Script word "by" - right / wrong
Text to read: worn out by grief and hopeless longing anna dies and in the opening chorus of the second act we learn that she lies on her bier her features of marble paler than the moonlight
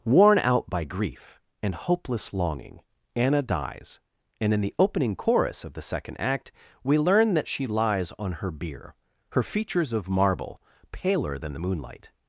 right